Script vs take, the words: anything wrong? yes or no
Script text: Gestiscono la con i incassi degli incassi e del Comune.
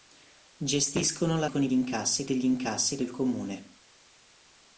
no